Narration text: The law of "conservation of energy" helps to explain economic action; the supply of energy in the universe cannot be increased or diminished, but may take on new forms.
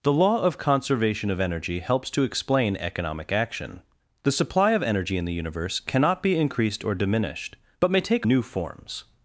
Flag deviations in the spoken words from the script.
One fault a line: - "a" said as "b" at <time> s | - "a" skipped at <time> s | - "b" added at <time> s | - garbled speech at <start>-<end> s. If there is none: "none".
- "on" skipped at 8.2 s